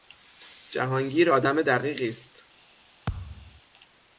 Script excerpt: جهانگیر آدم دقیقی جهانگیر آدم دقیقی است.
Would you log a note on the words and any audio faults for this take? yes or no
yes